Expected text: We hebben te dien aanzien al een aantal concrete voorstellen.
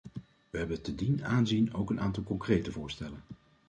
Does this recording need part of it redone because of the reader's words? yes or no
yes